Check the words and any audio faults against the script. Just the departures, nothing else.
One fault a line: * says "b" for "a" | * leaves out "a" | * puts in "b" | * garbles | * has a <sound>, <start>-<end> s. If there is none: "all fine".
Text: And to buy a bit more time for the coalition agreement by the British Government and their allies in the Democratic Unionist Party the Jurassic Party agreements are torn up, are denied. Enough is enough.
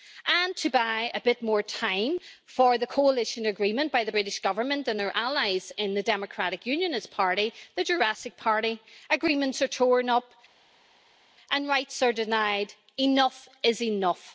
* puts in "and rights"